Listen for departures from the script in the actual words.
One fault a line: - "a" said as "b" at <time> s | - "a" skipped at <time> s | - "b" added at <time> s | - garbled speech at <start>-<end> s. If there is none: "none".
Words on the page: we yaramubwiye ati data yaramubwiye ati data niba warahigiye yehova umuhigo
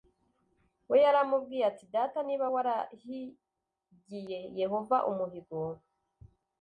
- "yaramubwiye ati data" skipped at 2.2 s